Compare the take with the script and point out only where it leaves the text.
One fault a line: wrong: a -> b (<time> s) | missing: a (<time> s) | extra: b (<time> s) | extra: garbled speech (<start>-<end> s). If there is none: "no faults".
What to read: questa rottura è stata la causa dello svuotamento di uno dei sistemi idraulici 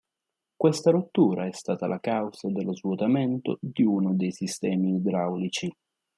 no faults